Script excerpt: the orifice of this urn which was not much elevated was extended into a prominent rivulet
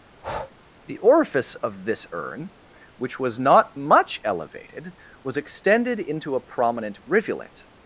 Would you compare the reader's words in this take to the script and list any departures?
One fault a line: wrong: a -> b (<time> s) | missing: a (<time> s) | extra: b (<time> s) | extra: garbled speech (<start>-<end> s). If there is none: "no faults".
no faults